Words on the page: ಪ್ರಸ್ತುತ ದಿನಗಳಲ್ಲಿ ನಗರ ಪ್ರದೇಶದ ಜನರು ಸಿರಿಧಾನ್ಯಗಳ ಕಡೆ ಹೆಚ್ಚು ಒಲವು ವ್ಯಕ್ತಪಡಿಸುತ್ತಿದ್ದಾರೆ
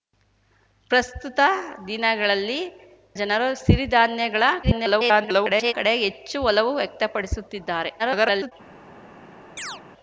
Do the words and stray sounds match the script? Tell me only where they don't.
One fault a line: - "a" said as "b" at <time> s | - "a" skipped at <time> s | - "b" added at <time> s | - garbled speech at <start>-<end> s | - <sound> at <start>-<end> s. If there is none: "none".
- "ನಗರ ಪ್ರದೇಶದ" skipped at 2.6 s
- garbled speech at 4.6-5.7 s
- garbled speech at 8.0-8.5 s
- chirp at 9.6-9.8 s